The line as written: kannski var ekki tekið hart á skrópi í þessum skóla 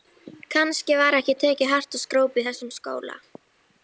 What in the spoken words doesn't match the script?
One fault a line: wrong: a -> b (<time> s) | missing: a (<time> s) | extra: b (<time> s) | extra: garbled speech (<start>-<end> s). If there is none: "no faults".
no faults